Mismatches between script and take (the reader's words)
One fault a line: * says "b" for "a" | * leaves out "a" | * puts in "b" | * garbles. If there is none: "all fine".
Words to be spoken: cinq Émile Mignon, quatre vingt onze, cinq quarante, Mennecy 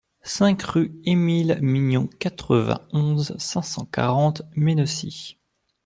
* puts in "rue"
* puts in "cent"